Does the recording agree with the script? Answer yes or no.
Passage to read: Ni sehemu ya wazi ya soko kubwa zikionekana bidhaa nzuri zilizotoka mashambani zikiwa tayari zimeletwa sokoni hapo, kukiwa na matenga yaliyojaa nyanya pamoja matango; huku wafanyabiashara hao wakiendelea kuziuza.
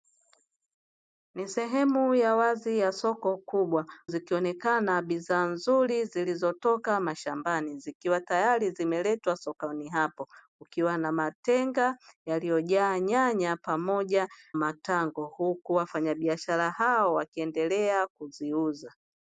yes